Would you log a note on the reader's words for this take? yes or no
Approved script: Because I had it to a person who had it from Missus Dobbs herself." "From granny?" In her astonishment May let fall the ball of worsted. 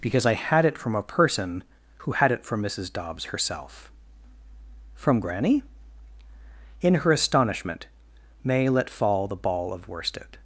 yes